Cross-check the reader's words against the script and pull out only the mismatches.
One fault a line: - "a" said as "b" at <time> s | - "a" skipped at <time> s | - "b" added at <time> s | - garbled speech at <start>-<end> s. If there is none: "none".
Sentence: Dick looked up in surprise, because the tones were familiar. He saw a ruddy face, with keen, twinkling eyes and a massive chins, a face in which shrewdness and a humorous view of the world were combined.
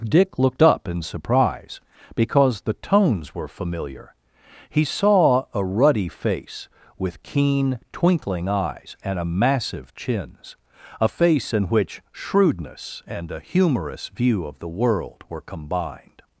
none